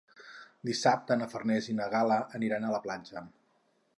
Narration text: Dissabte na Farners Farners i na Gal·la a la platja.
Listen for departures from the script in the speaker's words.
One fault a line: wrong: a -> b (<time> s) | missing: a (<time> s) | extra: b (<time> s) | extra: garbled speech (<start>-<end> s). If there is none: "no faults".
missing: Farners (1.7 s)
extra: aniran (2.4 s)